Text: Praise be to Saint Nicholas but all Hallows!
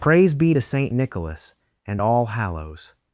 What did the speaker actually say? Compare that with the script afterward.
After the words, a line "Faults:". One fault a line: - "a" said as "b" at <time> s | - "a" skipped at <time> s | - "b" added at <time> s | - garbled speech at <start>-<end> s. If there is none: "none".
Praise be to Saint Nicholas and all Hallows!
Faults:
- "but" said as "and" at 1.9 s